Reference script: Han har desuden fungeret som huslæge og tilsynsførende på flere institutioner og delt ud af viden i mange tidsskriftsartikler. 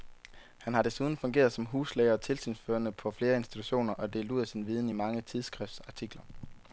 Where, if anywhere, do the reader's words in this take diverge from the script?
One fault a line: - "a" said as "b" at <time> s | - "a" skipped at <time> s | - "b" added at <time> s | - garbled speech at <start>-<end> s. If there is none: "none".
- "sin" added at 4.5 s